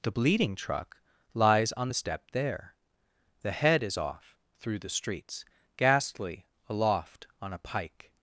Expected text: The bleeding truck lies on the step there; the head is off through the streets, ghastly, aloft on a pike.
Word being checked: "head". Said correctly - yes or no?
yes